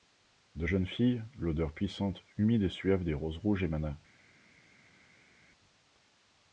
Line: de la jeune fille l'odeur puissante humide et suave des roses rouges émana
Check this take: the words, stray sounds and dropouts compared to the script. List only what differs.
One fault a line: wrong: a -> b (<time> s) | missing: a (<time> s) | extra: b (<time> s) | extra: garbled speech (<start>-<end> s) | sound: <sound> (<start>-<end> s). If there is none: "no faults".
missing: la (0.7 s)